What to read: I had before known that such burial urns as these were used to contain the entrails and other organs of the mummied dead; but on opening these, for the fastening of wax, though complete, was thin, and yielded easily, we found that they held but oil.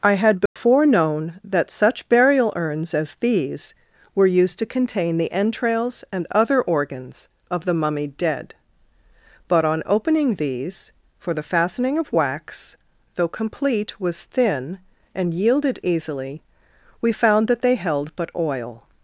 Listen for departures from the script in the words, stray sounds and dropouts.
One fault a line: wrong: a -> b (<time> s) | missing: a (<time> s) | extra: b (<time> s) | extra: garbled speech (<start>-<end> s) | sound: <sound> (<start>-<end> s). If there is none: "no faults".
sound: dropout (0.5-0.6 s)